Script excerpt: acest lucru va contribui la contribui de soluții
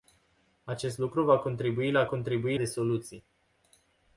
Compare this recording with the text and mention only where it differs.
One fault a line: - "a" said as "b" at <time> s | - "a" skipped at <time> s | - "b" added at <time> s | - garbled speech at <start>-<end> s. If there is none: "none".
none